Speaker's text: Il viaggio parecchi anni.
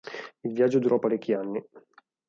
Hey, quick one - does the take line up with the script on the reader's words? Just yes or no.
no